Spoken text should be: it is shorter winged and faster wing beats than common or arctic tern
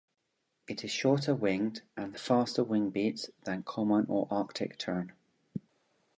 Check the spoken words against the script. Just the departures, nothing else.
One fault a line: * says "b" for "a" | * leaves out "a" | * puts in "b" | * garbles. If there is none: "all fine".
all fine